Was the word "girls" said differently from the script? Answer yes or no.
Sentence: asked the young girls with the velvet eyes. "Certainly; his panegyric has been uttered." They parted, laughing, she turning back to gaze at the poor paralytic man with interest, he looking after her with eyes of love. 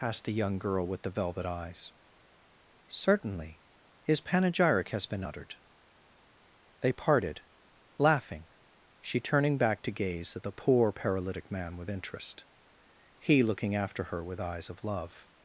yes